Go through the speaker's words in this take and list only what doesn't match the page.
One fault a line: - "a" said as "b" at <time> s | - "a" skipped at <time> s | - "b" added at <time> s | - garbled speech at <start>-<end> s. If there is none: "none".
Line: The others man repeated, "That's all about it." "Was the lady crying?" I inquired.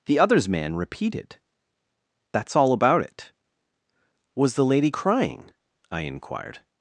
none